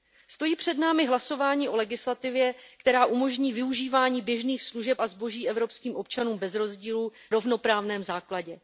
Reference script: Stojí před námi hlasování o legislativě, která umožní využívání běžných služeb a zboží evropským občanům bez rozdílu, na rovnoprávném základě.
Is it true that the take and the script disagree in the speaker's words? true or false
true